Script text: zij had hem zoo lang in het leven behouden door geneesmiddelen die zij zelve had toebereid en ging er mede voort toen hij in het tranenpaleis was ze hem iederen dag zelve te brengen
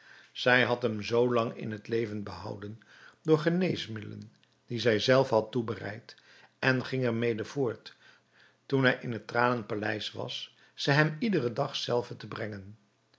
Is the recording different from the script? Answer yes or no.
no